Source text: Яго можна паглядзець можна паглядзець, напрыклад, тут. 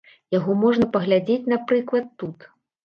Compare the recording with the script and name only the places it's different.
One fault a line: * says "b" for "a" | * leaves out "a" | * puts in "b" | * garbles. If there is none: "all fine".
* leaves out "можна паглядзець"